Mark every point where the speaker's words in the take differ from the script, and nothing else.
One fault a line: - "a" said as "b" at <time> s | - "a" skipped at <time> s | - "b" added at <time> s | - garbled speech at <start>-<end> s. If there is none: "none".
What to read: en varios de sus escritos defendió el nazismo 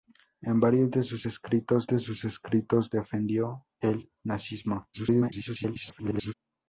- "de sus escritos" added at 1.8 s
- garbled speech at 4.9-6.3 s